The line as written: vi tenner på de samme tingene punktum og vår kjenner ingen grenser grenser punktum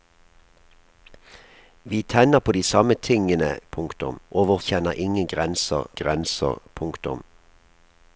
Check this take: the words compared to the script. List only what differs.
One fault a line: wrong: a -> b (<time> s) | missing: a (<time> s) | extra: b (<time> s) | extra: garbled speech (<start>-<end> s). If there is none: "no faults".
no faults